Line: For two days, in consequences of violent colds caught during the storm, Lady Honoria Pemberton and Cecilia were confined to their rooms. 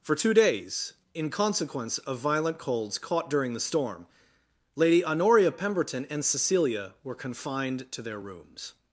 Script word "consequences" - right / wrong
wrong